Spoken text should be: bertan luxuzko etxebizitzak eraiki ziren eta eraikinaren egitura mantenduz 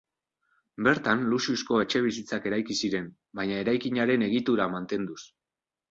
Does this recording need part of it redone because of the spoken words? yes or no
yes